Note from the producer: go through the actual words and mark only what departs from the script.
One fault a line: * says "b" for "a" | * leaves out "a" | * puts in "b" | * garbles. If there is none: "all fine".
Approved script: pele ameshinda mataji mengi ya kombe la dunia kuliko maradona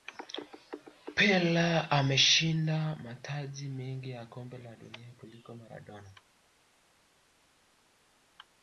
all fine